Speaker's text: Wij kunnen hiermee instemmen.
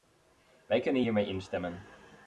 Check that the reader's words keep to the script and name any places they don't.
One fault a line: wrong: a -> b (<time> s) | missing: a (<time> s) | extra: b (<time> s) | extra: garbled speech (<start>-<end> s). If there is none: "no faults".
no faults